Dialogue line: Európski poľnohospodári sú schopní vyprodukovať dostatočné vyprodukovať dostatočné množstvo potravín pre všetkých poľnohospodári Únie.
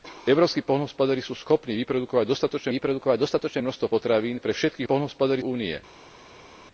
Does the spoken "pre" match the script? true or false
true